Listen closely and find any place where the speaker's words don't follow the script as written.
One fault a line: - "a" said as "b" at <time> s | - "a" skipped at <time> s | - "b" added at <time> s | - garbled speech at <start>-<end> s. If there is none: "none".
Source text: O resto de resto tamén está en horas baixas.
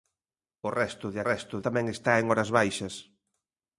none